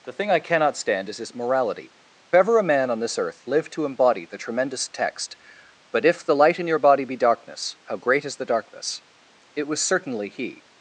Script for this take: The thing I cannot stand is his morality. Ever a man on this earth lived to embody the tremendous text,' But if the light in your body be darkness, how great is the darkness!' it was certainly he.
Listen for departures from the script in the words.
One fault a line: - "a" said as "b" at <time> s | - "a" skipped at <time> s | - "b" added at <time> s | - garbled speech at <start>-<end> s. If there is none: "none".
none